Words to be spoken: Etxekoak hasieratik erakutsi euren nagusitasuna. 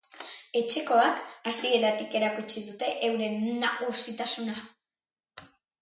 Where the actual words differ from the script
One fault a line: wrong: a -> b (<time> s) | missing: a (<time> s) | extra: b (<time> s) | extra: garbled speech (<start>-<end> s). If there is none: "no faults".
extra: dute (2.7 s)